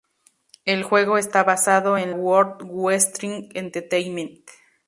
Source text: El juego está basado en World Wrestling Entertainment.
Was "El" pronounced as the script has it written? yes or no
yes